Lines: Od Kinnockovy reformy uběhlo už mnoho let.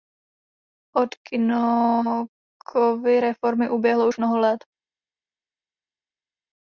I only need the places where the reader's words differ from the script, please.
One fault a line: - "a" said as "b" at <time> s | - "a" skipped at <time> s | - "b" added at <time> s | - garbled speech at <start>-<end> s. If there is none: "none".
none